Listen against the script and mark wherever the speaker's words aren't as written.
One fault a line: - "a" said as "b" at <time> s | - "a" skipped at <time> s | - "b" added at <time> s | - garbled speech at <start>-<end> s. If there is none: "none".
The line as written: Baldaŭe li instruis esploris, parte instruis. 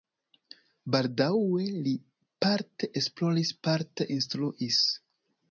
- "instruis" said as "parte" at 2.5 s